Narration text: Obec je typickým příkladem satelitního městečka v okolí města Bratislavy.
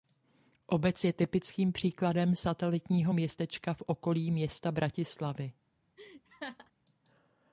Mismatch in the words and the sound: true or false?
true